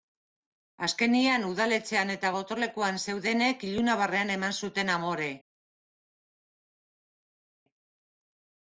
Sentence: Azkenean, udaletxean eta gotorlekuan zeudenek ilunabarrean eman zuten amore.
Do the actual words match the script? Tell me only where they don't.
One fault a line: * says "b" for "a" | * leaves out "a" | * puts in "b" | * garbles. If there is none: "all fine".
all fine